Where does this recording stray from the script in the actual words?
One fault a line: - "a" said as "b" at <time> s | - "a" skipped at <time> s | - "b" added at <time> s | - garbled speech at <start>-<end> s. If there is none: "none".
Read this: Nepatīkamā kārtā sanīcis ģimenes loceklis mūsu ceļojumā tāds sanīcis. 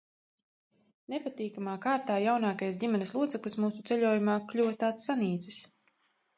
- "sanīcis" said as "jaunākais" at 2.2 s
- "kļuva" added at 4.5 s